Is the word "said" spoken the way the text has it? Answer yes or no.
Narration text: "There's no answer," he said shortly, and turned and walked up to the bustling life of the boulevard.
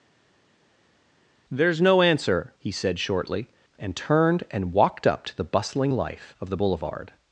yes